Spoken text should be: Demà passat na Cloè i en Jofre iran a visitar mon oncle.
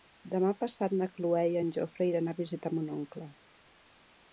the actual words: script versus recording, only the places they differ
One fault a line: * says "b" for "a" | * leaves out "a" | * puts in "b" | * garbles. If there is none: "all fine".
all fine